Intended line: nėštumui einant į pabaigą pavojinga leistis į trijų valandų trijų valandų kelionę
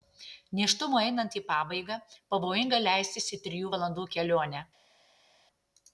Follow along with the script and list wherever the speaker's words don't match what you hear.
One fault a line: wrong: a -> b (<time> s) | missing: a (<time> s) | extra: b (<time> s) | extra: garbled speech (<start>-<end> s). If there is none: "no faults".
missing: trijų valandų (4.1 s)